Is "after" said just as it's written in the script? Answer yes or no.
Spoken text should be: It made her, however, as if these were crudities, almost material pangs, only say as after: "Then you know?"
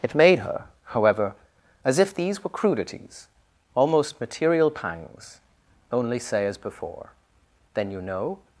no